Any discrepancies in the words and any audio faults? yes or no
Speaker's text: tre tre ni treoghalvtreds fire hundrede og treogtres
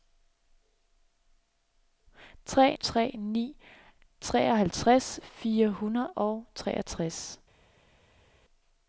no